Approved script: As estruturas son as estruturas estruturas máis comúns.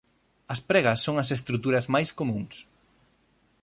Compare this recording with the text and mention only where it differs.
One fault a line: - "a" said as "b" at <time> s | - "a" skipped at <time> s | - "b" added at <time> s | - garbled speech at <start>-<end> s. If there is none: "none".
- "estruturas" said as "pregas" at 0.7 s
- "estruturas" skipped at 1.9 s